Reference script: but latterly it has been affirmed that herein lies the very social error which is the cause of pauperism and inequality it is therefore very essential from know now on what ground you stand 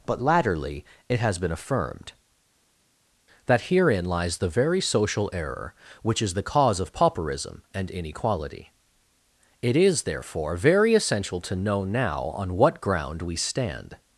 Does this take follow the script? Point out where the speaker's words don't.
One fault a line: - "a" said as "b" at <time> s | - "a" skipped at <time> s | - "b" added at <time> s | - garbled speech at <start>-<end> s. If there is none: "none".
- "from" said as "to" at 11.4 s
- "you" said as "we" at 13.2 s